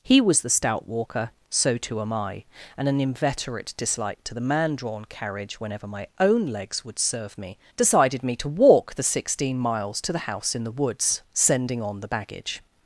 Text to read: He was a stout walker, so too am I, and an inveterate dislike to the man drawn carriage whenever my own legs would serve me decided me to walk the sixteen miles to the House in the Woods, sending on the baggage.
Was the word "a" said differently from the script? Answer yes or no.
yes